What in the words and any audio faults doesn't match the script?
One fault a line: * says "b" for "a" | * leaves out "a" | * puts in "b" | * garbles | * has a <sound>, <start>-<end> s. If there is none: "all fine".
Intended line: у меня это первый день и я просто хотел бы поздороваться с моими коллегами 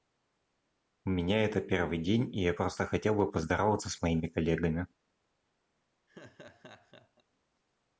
* has a laugh, 6.1-7.2 s